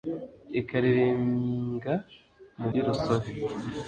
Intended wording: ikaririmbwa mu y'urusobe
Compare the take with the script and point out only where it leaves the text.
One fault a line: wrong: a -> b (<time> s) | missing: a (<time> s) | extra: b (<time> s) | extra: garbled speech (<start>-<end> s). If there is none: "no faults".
no faults